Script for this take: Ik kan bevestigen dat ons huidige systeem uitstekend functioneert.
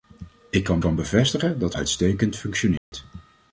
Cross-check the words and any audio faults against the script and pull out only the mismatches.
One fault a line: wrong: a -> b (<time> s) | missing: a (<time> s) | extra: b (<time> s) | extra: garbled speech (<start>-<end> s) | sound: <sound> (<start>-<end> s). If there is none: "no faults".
extra: kan (0.8 s)
missing: ons huidige systeem (1.8 s)
sound: dropout (2.8-2.9 s)